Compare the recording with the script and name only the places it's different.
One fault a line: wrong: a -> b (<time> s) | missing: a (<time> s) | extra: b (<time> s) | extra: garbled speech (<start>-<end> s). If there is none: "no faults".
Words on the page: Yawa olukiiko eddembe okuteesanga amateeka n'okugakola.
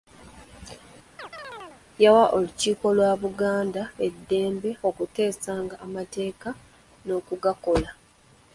extra: lwa Buganda (3.0 s)